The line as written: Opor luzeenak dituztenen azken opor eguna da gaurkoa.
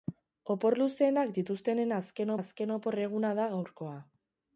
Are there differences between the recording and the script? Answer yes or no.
yes